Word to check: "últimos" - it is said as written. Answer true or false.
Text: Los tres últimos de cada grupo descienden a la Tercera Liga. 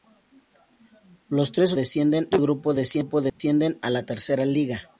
false